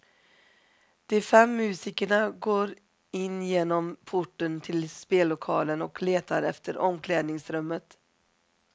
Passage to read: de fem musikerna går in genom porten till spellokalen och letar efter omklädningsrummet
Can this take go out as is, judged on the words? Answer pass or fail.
pass